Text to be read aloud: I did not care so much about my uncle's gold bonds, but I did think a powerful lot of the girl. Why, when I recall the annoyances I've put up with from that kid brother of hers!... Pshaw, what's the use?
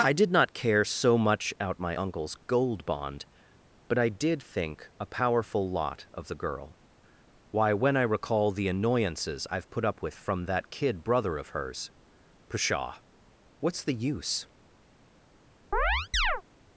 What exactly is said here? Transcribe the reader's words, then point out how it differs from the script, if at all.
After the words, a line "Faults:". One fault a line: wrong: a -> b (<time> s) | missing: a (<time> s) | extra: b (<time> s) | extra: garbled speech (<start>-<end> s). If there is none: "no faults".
I did not care so much out my uncle's gold bond, but I did think a powerful lot of the girl. Why, when I recall the annoyances I've put up with from that kid brother of hers!... Pshaw, what's the use?
Faults:
wrong: about -> out (1.6 s)
wrong: bonds -> bond (2.9 s)